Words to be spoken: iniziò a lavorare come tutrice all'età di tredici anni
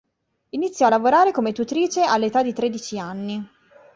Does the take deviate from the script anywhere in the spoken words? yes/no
no